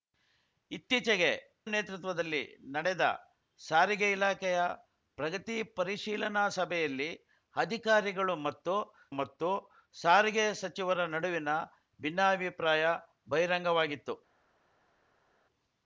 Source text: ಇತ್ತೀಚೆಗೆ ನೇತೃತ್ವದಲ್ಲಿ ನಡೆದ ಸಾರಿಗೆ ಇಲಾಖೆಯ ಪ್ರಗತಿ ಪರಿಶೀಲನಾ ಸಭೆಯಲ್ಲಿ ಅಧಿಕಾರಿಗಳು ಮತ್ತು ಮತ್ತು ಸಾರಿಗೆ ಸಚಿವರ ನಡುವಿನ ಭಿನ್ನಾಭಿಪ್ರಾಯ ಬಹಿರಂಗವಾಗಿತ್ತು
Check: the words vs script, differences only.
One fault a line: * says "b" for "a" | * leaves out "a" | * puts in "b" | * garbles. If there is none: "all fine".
all fine